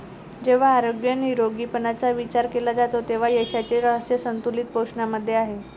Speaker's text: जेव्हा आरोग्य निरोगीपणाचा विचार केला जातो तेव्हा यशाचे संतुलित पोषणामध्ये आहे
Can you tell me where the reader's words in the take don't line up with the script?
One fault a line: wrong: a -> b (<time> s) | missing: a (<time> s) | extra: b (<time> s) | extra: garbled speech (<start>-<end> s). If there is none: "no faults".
extra: रहस्य (3.8 s)